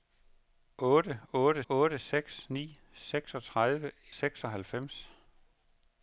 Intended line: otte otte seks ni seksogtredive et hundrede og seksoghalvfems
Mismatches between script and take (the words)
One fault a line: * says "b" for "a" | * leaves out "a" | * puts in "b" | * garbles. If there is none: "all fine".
* puts in "otte"
* leaves out "et hundrede og"